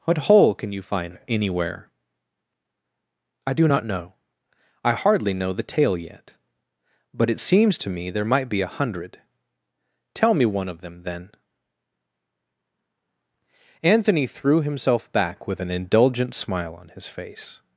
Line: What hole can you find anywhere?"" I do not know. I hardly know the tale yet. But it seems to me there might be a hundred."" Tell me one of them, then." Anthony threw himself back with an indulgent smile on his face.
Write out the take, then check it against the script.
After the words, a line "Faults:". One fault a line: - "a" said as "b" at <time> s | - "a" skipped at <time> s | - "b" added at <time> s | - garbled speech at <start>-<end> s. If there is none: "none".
What hole can you find anywhere?"" I do not know. I hardly know the tale yet. But it seems to me there might be a hundred."" Tell me one of them, then." Anthony threw himself back with an indulgent smile on his face.
Faults:
none